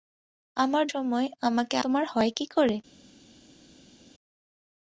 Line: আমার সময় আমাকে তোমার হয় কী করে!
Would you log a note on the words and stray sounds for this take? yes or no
no